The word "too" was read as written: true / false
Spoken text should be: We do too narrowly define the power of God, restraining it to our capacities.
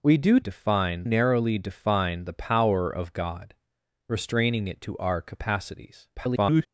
false